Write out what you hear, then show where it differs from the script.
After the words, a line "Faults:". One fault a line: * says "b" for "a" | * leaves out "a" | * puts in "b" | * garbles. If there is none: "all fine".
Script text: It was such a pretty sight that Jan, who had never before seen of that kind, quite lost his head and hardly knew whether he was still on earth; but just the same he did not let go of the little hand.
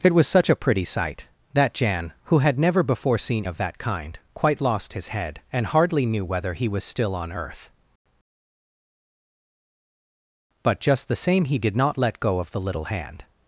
It was such a pretty sight that Jan, who had never before seen of that kind, quite lost his head and hardly knew whether he was still on earth; but just the same he did not let go of the little hand.
Faults:
all fine